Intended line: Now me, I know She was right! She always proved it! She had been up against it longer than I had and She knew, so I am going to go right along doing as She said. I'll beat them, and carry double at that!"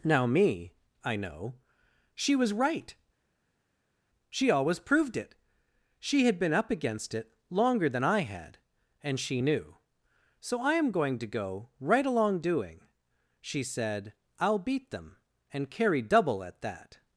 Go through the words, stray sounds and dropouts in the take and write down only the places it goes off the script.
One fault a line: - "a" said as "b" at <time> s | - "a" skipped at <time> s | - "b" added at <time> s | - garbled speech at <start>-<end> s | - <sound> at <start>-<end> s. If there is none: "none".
- "as" skipped at 12.8 s